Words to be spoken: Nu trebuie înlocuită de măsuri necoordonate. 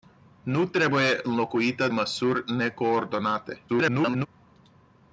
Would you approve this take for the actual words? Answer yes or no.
no